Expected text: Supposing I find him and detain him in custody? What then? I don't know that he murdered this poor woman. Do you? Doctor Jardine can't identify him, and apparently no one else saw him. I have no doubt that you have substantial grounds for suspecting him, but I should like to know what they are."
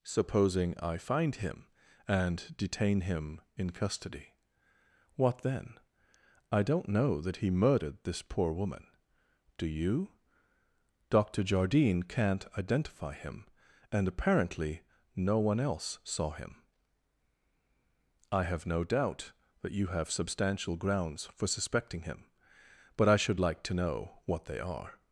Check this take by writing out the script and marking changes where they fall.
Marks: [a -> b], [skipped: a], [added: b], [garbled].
Supposing I find him and detain him in custody? What then? I don't know that he murdered this poor woman. Do you? Doctor Jardine can't identify him, and apparently no one else saw him. I have no doubt that you have substantial grounds for suspecting him, but I should like to know what they are."